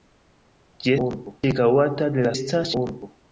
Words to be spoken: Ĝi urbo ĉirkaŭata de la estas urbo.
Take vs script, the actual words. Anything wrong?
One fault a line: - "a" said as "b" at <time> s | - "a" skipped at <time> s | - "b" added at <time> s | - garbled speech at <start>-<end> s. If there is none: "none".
none